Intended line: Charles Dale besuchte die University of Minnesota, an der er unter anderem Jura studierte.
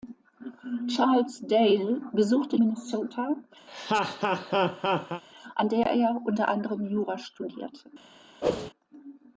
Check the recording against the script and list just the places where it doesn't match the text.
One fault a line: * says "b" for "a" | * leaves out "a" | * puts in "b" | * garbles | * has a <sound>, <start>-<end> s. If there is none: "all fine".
* leaves out "die University of"
* has a laugh, 3.7-5.2 s
* has a whoosh, 8.4-8.7 s